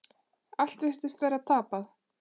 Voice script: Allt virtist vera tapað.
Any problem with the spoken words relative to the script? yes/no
no